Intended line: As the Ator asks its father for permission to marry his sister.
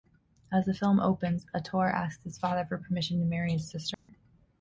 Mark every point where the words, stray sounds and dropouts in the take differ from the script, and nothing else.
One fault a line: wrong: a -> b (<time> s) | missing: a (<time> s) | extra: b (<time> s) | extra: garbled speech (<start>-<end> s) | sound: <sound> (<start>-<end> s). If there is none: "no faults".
extra: film opens (0.7 s)
wrong: its -> his (2.2 s)
sound: dropout (3.9-4.1 s)